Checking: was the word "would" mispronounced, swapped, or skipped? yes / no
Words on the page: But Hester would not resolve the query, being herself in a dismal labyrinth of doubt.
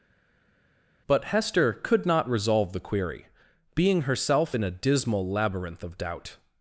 yes